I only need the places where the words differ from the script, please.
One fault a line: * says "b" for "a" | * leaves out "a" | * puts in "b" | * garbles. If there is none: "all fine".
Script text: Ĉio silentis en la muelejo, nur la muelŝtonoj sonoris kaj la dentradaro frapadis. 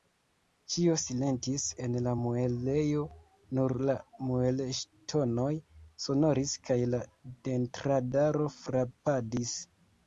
all fine